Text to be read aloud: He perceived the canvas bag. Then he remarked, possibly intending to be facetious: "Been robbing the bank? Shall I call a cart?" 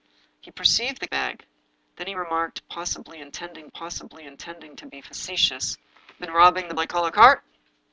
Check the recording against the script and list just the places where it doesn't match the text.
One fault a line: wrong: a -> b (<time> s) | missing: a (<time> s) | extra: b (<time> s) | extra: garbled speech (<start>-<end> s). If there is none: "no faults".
missing: canvas (1.1 s)
extra: possibly intending (3.7 s)
missing: bank Shall (6.7 s)